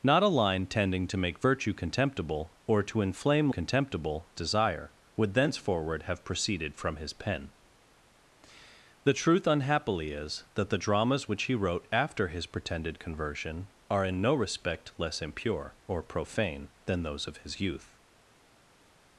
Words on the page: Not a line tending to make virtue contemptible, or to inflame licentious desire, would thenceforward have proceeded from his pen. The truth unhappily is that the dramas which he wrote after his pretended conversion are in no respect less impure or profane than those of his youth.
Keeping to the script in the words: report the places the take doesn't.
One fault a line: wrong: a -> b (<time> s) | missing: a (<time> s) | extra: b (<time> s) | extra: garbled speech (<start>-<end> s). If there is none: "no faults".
wrong: licentious -> contemptible (3.5 s)